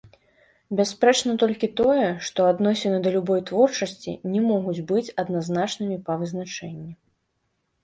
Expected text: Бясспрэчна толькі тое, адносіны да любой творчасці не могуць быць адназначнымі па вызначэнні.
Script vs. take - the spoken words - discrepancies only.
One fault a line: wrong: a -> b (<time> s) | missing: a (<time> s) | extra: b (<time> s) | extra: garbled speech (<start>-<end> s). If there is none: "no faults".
extra: што (2.3 s)